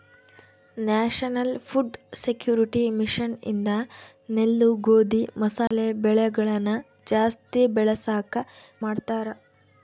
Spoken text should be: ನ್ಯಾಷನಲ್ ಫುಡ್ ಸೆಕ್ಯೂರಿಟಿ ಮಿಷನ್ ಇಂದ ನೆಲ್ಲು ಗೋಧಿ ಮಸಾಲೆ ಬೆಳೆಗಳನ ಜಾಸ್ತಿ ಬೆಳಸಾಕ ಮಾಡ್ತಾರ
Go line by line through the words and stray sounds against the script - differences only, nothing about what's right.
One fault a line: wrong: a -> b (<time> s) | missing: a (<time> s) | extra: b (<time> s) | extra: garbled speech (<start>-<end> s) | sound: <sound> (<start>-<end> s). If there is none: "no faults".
sound: dropout (5.7-5.7 s)